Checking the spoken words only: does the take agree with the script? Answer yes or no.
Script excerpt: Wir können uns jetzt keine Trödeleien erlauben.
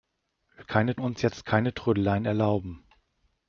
no